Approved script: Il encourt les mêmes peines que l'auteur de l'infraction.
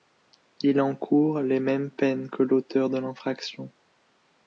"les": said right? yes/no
yes